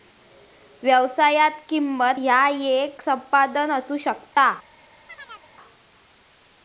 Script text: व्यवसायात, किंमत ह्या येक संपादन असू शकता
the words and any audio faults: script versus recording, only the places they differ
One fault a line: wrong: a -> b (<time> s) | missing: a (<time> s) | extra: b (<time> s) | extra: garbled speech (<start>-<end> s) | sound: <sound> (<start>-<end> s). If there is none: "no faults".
sound: dropout (4.3-4.4 s)
sound: chirp (5.1-5.5 s)